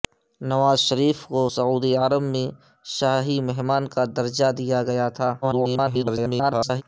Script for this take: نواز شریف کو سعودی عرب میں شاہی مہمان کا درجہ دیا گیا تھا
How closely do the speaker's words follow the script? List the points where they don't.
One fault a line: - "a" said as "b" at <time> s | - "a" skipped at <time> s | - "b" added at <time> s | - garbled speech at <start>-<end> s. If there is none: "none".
- garbled speech at 5.4-6.8 s